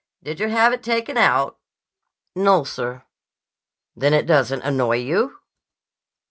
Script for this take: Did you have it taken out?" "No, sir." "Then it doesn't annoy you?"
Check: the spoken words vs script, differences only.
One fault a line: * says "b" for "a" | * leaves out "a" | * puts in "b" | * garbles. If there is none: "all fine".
all fine